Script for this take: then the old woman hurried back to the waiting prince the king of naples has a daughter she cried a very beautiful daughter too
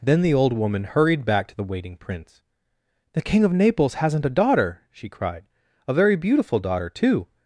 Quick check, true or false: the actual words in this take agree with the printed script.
false